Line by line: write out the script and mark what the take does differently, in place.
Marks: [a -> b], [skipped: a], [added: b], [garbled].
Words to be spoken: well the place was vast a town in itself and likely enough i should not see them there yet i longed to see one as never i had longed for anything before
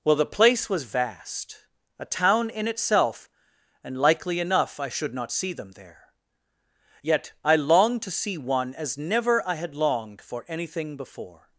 well the place was vast a town in itself and likely enough i should not see them there yet i longed to see one as never i had longed for anything before